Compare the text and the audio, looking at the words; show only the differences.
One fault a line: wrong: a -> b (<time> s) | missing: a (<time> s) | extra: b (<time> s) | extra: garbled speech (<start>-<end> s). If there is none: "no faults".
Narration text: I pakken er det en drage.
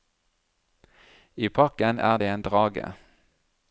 no faults